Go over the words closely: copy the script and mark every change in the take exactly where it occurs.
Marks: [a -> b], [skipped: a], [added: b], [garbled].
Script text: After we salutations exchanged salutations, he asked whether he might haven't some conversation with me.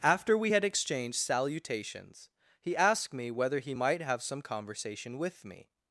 After we [salutations -> had] exchanged salutations, he asked [added: me] whether he might [haven't -> have] some conversation with me.